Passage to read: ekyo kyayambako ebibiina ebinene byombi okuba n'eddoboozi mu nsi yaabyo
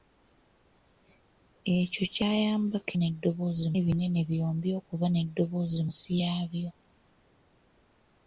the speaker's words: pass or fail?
fail